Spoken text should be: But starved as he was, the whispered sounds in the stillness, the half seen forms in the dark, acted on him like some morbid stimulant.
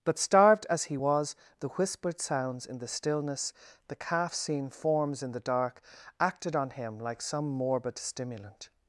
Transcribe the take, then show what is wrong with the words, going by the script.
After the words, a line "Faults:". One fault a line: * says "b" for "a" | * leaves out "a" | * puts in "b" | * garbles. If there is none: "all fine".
But starved as he was, the whispered sounds in the stillness, the calf seen forms in the dark, acted on him like some morbid stimulant.
Faults:
* says "calf" for "half"